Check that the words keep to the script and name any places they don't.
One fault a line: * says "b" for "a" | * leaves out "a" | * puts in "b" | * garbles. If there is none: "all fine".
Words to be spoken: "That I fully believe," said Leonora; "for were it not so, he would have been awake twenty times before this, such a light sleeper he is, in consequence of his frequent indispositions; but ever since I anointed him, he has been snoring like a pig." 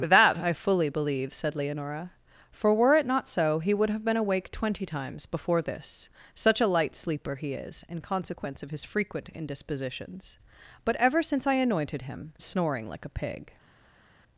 * leaves out "he has been"